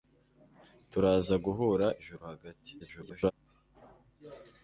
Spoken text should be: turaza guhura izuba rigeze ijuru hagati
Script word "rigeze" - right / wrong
wrong